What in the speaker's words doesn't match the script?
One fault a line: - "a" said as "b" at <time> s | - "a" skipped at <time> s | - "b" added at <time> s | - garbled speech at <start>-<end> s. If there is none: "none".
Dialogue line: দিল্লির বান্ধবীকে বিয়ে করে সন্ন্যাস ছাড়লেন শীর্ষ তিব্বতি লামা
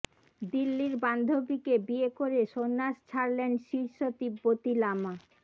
none